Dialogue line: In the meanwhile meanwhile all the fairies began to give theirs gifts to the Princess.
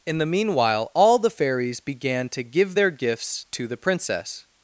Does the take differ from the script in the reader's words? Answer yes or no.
yes